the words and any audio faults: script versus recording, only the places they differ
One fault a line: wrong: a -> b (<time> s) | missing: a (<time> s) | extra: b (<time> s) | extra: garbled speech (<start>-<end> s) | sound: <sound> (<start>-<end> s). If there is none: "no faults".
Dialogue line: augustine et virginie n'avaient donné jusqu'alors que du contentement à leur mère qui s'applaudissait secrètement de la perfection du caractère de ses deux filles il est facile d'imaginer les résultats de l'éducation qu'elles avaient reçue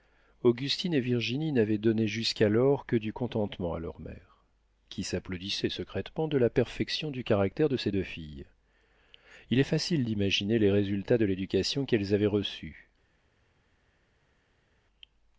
no faults